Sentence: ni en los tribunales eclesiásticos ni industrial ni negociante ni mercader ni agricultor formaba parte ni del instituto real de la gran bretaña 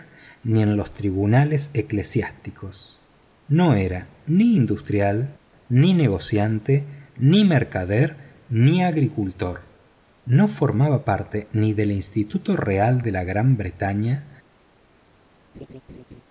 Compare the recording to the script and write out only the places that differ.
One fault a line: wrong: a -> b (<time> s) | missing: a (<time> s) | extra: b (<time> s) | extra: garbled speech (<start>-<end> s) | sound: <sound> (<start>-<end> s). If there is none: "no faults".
extra: no era (3.5 s)
extra: no (10.2 s)
sound: laugh (15.5-16.2 s)